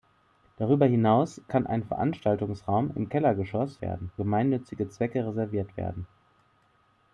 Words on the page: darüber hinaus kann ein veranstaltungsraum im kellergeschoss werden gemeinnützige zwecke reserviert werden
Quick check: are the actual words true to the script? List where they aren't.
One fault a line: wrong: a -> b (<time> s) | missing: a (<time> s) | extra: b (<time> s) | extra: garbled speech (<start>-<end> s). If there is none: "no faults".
no faults